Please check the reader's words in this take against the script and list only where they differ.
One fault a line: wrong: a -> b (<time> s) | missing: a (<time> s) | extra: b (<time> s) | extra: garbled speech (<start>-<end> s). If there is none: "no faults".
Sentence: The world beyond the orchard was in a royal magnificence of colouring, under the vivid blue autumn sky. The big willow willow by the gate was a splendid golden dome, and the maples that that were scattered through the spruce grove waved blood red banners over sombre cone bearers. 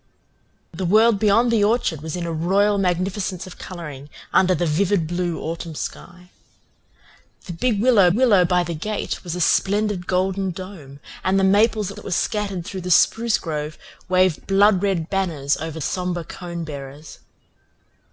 no faults